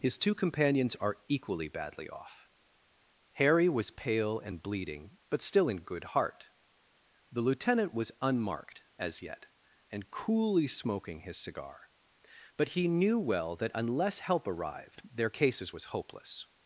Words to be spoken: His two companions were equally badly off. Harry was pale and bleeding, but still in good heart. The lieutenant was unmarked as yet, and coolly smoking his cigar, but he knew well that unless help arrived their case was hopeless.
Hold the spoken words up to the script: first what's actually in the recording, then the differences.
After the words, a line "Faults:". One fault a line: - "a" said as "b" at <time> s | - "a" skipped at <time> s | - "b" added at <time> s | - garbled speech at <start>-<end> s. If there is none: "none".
His two companions are equally badly off. Harry was pale and bleeding, but still in good heart. The lieutenant was unmarked as yet, and coolly smoking his cigar, but he knew well that unless help arrived their cases was hopeless.
Faults:
- "were" said as "are" at 0.9 s
- "case" said as "cases" at 15.3 s